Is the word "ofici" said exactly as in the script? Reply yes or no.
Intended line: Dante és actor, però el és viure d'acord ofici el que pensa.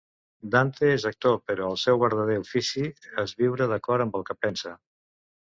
no